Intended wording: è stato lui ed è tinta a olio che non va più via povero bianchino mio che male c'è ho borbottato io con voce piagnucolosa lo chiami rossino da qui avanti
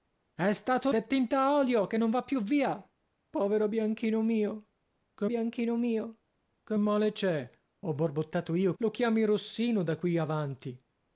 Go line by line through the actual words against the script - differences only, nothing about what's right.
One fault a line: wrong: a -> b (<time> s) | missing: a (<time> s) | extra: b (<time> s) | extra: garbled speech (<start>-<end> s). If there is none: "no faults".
missing: lui ed (0.9 s)
extra: bianchino mio che (5.2 s)
missing: con voce piagnucolosa (8.7 s)